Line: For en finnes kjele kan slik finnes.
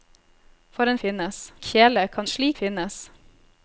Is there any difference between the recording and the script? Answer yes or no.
no